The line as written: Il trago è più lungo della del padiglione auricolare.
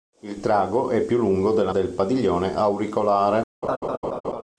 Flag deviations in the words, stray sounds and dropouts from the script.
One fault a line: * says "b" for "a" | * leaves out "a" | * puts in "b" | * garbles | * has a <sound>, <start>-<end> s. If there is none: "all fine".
* has a laugh, 3.6-4.4 s